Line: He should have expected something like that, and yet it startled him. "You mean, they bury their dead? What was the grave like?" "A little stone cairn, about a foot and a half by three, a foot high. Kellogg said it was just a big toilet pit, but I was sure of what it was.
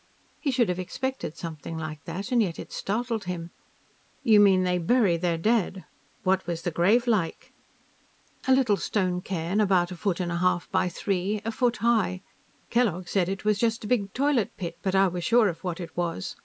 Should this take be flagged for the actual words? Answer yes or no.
no